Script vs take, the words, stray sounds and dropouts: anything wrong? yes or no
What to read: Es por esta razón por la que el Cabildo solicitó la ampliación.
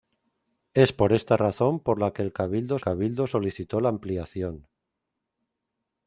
yes